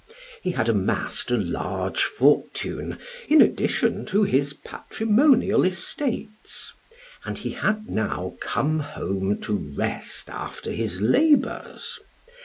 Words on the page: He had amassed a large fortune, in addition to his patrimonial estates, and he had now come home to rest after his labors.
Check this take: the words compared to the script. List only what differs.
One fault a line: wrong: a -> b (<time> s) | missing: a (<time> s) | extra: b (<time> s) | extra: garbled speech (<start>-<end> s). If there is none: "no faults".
no faults